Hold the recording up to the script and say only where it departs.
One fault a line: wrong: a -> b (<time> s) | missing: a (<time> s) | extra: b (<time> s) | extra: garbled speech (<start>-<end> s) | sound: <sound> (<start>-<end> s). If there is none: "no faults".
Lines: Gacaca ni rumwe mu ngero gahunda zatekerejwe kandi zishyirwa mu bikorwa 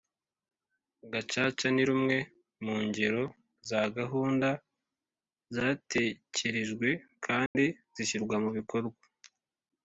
extra: za (3.7 s)
sound: dropout (7.5-7.6 s)